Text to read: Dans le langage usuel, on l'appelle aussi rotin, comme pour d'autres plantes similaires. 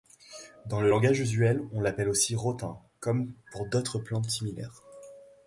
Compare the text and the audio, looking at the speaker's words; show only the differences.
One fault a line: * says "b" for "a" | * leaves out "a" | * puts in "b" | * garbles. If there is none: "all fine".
all fine